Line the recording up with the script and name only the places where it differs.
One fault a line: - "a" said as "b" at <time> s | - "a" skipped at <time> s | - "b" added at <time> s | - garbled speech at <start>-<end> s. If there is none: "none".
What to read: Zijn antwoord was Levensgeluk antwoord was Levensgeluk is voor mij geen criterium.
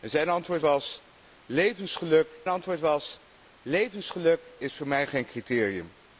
none